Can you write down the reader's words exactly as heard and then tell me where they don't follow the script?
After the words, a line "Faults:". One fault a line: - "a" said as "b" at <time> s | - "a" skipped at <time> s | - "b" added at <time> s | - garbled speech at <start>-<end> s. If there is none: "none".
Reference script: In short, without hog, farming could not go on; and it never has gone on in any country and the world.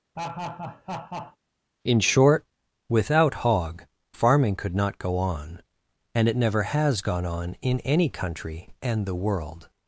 In short, without hog, farming could not go on; and it never has gone on in any country and the world.
Faults:
none